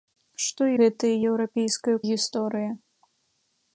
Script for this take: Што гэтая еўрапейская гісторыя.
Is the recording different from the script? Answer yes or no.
no